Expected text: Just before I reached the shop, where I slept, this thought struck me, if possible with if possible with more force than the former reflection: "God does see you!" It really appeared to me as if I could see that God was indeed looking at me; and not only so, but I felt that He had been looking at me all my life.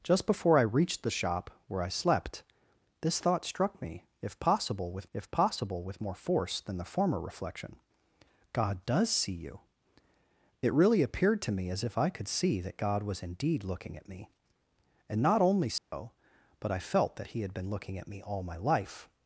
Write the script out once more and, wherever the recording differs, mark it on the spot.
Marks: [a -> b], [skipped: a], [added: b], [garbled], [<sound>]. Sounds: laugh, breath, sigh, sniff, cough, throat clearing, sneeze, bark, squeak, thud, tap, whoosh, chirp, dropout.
Just before I reached the shop, where I slept, this thought struck me, if possible with if possible with more force than the former reflection: "God does see you!" It really appeared to me as if I could see that God was indeed looking at me; and not only so, [dropout] but I felt that He had been looking at me all my life.